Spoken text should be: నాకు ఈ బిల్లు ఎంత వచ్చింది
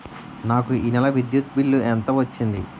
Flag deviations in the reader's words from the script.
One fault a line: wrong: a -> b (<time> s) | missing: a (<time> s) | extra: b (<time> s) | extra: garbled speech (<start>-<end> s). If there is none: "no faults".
extra: నెల విద్యుత్ (0.9 s)